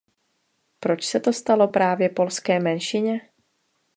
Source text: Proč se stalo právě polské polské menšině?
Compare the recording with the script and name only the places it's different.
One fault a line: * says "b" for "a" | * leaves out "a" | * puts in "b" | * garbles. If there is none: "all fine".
* puts in "to"
* leaves out "polské"